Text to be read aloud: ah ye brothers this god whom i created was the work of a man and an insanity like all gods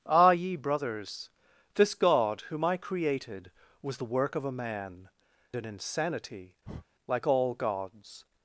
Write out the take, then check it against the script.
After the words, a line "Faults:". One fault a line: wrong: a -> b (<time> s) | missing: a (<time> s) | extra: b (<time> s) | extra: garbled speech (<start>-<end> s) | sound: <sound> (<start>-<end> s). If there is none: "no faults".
ah ye brothers this god whom i created was the work of a man an insanity like all gods
Faults:
missing: and (5.1 s)
sound: breath (6.6-6.9 s)